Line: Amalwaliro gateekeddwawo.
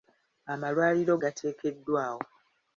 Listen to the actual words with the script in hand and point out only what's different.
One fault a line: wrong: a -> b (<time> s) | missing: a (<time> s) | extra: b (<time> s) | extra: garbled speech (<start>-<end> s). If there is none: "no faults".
no faults